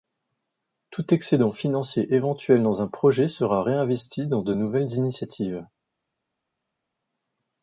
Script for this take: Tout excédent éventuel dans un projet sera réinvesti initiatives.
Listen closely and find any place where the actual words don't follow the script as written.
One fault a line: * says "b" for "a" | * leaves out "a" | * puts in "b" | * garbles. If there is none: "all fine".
* puts in "financier"
* puts in "dans de nouvelles"